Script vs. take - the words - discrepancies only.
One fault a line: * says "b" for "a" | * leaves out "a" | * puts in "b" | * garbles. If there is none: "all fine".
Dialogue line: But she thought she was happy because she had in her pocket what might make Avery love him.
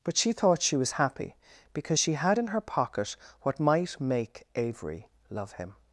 all fine